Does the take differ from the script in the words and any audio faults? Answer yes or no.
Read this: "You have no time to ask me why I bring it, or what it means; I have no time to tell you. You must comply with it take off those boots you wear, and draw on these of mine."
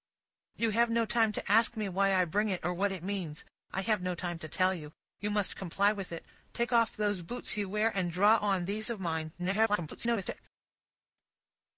yes